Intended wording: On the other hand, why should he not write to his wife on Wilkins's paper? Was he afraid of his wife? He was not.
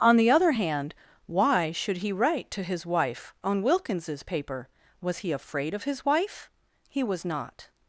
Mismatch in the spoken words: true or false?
true